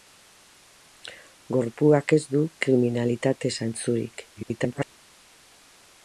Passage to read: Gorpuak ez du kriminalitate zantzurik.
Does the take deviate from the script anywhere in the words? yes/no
yes